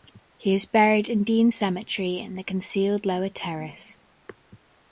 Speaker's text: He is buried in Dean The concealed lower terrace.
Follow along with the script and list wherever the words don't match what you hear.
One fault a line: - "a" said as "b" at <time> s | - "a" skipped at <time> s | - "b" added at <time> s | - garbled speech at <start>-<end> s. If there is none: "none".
- "Cemetery in" added at 1.5 s